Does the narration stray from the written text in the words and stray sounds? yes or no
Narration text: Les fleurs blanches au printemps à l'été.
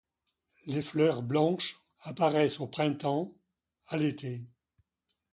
yes